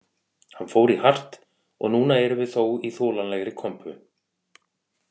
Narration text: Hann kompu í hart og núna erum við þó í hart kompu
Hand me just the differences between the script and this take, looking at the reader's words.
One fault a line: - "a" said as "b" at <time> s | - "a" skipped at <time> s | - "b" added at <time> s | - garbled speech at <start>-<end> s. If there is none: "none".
- "kompu" said as "fór" at 0.7 s
- "hart" said as "þolanlegri" at 3.0 s